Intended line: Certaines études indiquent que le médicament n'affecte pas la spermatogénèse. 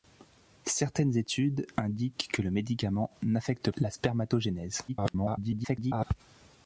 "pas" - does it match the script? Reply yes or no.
no